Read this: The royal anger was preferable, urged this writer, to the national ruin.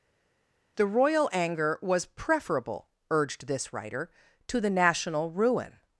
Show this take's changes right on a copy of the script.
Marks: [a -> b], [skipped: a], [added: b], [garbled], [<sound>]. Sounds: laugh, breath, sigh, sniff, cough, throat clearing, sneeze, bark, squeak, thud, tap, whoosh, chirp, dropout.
The royal anger was preferable, urged this writer, to the national ruin.